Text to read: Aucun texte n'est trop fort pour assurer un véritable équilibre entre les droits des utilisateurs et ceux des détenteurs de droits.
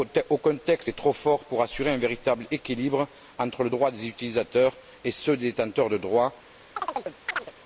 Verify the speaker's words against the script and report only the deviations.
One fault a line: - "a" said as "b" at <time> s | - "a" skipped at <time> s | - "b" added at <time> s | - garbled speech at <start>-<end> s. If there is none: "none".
none